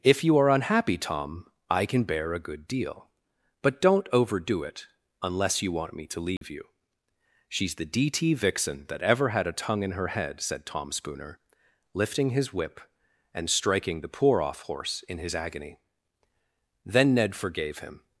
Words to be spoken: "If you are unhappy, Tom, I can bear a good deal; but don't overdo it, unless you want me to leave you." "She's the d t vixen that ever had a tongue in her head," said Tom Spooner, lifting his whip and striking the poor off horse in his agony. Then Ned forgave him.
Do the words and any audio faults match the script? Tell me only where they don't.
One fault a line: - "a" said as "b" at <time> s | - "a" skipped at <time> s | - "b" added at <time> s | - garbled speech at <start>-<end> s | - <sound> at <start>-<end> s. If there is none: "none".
- dropout at 6.4-6.4 s